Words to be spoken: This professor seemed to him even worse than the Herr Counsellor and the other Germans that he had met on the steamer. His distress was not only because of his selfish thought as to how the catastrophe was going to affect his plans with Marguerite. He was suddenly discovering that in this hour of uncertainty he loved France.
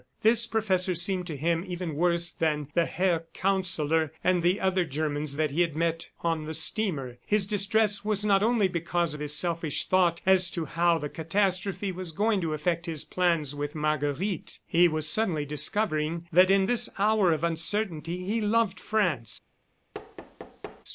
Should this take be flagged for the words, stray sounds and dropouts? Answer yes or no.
yes